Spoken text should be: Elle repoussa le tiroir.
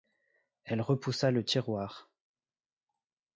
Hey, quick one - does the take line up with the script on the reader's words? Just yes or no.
yes